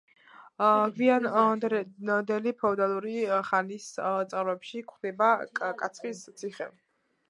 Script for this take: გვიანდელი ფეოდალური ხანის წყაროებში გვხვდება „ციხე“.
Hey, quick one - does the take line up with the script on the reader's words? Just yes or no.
no